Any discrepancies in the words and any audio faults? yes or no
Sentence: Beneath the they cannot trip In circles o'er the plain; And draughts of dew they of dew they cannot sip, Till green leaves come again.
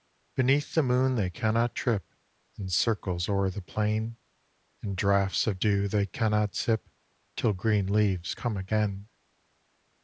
yes